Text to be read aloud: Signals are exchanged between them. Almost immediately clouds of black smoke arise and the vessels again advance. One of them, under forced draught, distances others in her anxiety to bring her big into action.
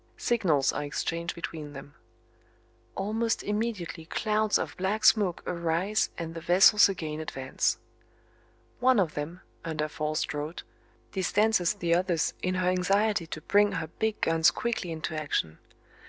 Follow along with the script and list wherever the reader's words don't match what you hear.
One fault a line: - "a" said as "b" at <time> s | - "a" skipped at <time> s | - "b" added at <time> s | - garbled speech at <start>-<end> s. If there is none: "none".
- "the" added at 11.7 s
- "guns quickly" added at 14.2 s